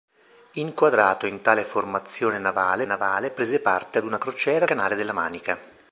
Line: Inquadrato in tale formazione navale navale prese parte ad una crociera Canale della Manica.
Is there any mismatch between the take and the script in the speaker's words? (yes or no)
no